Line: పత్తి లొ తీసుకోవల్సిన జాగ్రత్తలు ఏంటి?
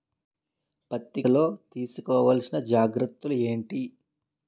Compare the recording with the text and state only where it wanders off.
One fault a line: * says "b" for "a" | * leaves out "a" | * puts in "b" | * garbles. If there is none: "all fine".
all fine